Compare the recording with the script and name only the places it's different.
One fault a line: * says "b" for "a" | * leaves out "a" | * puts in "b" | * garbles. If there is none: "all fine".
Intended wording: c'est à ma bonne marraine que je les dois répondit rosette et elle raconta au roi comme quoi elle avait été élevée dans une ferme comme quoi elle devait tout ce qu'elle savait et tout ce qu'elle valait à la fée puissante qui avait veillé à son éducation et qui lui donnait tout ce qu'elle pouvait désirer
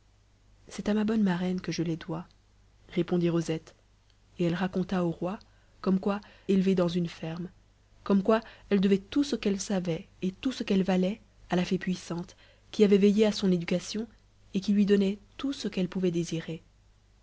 * leaves out "elle avait été"